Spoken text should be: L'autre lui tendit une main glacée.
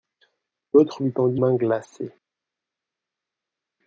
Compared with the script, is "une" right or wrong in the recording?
wrong